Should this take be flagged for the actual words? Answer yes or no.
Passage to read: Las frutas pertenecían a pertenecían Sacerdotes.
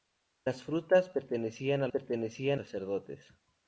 no